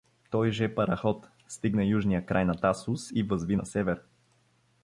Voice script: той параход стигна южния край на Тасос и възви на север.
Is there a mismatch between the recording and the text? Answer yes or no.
yes